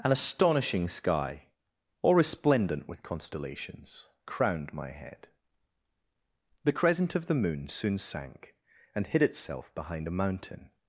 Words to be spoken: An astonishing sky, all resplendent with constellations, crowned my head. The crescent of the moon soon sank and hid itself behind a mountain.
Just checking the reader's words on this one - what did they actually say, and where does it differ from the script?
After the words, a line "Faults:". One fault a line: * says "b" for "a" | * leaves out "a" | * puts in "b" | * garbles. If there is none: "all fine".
An astonishing sky, all resplendent with constellations, crowned my head. The crescent of the moon soon sank and hid itself behind a mountain.
Faults:
all fine